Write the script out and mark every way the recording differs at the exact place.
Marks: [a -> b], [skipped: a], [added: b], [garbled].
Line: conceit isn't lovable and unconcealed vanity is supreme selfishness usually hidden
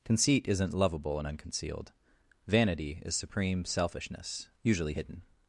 conceit isn't lovable and unconcealed vanity is supreme selfishness usually hidden